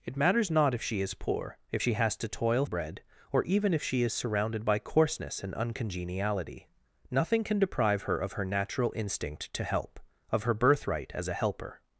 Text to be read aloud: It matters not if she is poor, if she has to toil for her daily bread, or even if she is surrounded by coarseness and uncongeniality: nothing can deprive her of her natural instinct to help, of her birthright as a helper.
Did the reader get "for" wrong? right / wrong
wrong